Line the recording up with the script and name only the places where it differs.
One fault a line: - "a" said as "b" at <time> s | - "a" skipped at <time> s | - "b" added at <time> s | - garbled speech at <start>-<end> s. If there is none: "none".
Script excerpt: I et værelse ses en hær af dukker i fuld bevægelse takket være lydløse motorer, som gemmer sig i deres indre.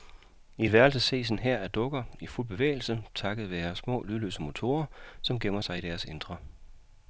- "små" added at 3.8 s